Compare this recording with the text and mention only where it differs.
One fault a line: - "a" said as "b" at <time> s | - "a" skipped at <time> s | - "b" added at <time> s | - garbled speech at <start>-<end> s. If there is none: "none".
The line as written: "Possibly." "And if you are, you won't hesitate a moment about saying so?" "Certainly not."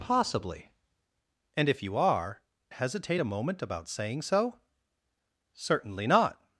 - "you won't" skipped at 2.4 s